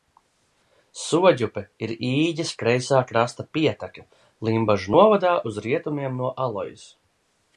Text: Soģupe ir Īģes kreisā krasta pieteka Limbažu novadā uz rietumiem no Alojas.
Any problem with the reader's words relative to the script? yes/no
no